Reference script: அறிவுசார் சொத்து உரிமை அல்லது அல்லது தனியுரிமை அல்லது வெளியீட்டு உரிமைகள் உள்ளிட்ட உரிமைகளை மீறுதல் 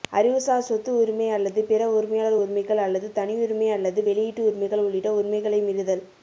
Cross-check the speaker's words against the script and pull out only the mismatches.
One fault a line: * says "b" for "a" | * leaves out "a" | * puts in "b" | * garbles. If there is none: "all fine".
* puts in "பிற உரிமையாளர் உரிமைகள்"